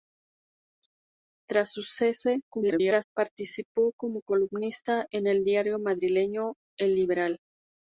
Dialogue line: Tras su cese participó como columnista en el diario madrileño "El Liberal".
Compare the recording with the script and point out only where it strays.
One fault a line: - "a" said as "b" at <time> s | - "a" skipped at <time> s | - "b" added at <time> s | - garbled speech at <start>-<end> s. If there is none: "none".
- garbled speech at 2.5-3.0 s